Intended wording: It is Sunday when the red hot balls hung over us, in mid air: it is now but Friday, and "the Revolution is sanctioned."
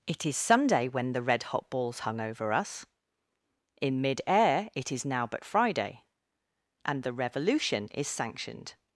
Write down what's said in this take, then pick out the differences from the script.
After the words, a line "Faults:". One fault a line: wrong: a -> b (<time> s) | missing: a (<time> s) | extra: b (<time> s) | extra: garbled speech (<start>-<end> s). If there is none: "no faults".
It is Sunday when the red hot balls hung over us, in mid air: it is now but Friday, and "the Revolution is sanctioned."
Faults:
no faults